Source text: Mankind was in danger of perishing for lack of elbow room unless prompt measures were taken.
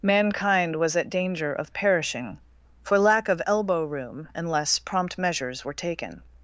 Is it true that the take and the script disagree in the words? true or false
true